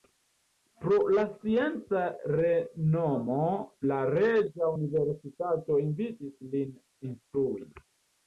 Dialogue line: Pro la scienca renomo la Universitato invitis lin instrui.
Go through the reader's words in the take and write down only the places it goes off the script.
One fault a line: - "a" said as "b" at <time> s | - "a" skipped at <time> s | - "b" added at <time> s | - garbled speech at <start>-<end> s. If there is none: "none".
- "Reĝa" added at 4.1 s